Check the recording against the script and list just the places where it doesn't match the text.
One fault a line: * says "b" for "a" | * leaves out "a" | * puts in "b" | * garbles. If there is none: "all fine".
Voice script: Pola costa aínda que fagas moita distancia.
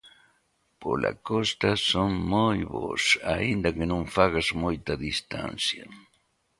* puts in "son moi bos"
* puts in "non"